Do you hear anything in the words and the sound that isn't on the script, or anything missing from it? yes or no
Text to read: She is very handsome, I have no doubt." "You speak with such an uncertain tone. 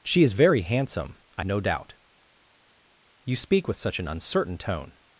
yes